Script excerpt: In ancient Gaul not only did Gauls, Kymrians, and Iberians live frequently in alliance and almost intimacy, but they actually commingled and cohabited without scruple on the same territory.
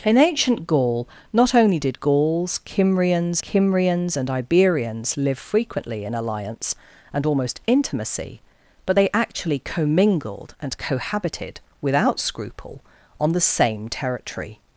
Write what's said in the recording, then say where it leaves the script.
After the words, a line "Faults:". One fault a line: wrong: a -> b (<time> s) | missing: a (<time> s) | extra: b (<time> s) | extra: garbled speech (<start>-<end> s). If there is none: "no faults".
In ancient Gaul not only did Gauls, Kymrians Kymrians, and Iberians live frequently in alliance and almost intimacy, but they actually commingled and cohabited without scruple on the same territory.
Faults:
extra: Kymrians (3.4 s)